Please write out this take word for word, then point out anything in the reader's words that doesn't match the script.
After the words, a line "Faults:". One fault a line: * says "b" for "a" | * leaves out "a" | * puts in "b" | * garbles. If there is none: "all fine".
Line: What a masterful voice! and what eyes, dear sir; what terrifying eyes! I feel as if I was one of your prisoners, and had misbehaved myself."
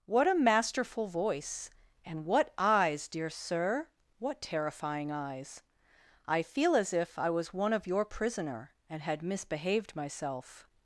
What a masterful voice! and what eyes, dear sir; what terrifying eyes! I feel as if I was one of your prisoner, and had misbehaved myself."
Faults:
* says "prisoner" for "prisoners"